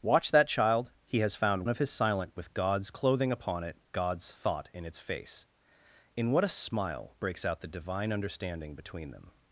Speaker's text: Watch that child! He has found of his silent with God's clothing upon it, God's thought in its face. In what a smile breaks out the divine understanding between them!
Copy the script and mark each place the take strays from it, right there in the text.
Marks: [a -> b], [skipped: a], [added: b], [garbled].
Watch that child! He has found of his silent with God's clothing upon it, God's thought in its face. In what a smile breaks out the divine understanding between them!